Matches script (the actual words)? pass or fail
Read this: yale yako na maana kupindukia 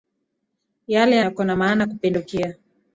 pass